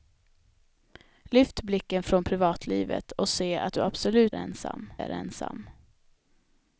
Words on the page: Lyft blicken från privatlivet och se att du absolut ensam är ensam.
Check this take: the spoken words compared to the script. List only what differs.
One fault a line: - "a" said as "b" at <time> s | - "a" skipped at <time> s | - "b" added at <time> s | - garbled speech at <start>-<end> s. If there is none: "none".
none